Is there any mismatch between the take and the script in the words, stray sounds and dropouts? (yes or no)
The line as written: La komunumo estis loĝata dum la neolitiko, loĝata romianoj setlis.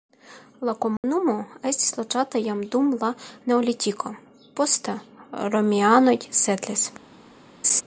yes